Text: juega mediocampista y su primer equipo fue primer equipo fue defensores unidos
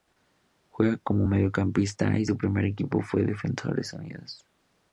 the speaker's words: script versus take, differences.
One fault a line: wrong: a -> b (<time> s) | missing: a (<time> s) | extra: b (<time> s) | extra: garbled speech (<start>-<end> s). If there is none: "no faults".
extra: como (1.0 s)
missing: primer equipo fue (3.2 s)